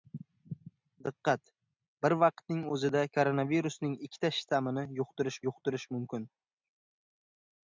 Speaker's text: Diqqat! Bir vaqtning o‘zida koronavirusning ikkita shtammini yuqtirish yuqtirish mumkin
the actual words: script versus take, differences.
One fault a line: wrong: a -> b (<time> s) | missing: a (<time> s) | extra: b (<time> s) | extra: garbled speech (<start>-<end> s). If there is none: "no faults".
no faults